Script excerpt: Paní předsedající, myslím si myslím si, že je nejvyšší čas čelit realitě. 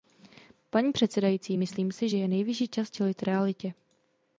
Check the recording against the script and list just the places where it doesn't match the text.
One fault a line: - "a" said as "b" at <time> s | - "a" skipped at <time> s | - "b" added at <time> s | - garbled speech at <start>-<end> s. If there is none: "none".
- "myslím si" skipped at 2.1 s